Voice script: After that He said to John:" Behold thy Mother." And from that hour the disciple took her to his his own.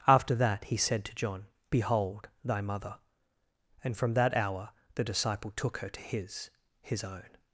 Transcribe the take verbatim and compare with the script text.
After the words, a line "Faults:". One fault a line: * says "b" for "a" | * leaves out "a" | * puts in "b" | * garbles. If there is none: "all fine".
After that He said to John:" Behold thy Mother." And from that hour the disciple took her to his his own.
Faults:
all fine